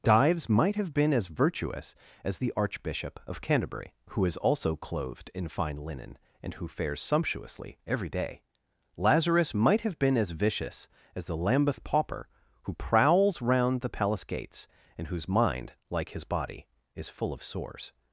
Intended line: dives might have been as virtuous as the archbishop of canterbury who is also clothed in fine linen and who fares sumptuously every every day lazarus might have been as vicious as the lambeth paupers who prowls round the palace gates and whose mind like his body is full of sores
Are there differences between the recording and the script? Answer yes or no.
yes